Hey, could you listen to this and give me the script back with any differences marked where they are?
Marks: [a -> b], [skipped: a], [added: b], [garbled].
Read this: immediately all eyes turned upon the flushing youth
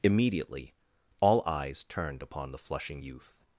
immediately all eyes turned upon the flushing youth